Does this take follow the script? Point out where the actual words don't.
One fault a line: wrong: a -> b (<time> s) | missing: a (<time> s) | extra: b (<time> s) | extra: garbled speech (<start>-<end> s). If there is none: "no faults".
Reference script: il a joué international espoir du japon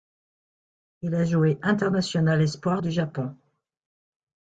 no faults